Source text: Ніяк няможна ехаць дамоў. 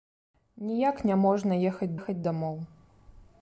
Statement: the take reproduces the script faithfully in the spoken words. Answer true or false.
false